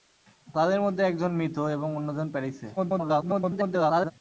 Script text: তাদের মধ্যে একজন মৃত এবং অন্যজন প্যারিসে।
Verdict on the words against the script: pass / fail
fail